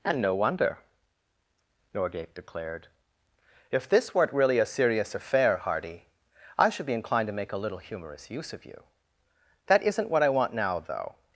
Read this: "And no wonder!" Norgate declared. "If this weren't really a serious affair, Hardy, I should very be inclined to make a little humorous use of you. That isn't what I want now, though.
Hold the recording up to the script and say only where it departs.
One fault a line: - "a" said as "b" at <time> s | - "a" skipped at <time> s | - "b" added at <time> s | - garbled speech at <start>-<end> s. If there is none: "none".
- "very" skipped at 6.8 s